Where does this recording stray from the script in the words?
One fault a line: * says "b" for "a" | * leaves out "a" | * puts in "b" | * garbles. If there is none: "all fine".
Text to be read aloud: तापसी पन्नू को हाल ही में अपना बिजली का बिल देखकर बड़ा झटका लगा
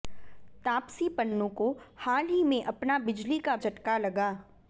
* leaves out "बिल देखकर बड़ा"